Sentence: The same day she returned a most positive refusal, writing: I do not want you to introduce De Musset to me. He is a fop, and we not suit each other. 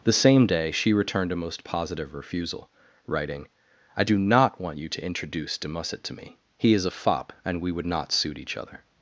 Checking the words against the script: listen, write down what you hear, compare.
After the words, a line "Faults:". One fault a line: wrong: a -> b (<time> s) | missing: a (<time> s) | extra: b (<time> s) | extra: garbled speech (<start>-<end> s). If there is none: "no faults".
The same day she returned a most positive refusal, writing: I do not want you to introduce De Musset to me. He is a fop, and we would not suit each other.
Faults:
extra: would (7.7 s)